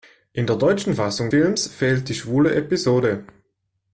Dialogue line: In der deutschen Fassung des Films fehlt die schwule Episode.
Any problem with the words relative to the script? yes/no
yes